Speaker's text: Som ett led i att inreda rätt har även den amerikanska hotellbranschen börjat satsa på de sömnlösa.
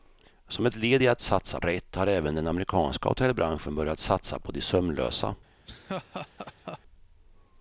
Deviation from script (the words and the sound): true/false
true